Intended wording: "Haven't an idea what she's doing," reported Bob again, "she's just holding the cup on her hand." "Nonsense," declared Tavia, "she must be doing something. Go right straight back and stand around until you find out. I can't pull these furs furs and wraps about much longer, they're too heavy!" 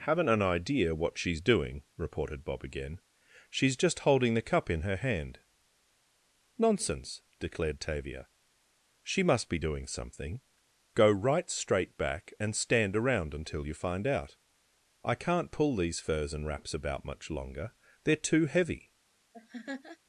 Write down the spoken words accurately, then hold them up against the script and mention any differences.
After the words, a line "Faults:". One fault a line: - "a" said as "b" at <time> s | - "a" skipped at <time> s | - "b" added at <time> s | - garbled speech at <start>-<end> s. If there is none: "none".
"Haven't an idea what she's doing," reported Bob again, "she's just holding the cup in her hand." "Nonsense," declared Tavia, "she must be doing something. Go right straight back and stand around until you find out. I can't pull these furs and wraps about much longer, they're too heavy!"
Faults:
- "on" said as "in" at 4.7 s
- "furs" skipped at 16.3 s